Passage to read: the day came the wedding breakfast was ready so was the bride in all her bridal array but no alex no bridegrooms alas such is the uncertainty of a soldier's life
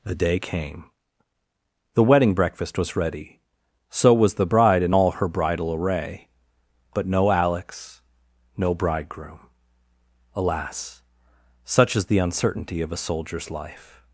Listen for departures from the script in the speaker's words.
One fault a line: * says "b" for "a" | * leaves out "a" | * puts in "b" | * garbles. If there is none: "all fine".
* says "bridegroom" for "bridegrooms"